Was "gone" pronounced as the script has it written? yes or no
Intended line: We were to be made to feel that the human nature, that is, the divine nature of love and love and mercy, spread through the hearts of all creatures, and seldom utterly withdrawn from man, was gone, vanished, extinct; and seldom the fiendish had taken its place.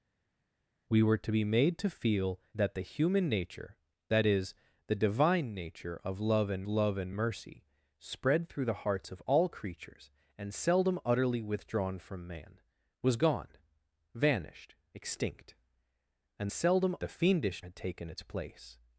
yes